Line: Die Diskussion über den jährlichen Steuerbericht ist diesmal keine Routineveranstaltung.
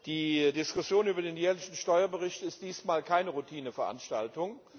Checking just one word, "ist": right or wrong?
right